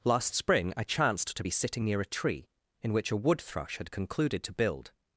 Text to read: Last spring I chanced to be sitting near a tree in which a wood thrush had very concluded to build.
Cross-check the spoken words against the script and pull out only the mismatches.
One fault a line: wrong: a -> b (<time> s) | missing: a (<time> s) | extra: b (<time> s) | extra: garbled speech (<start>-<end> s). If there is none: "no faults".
missing: very (3.9 s)